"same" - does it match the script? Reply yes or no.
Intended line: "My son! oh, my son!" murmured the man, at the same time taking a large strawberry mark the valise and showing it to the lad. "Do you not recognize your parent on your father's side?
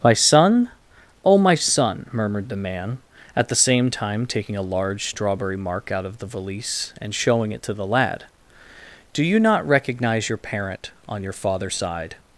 yes